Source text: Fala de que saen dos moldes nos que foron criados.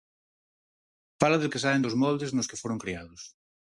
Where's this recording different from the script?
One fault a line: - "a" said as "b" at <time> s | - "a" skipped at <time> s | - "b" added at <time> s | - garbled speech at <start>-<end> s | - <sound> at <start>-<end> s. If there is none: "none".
none